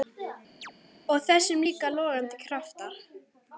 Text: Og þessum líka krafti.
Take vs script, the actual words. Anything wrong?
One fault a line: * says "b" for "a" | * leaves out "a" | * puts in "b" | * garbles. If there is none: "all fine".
* puts in "logandi"